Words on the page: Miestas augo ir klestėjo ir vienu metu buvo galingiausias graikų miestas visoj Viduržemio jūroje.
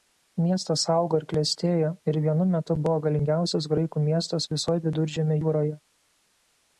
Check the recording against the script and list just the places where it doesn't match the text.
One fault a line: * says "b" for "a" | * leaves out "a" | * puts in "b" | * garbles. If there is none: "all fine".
all fine